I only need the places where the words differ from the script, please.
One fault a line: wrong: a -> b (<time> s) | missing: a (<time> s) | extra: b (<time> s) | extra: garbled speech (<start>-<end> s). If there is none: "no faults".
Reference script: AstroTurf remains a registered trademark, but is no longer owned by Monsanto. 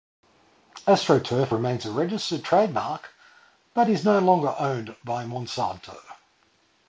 no faults